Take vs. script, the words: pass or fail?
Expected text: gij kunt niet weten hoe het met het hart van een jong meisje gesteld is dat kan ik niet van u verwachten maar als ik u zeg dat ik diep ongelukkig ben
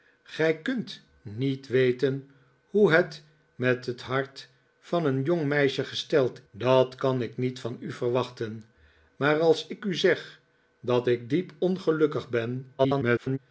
fail